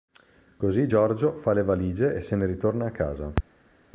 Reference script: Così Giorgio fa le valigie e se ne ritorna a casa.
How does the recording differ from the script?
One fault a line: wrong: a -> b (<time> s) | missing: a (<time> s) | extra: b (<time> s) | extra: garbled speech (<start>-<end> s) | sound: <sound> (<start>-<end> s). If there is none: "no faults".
no faults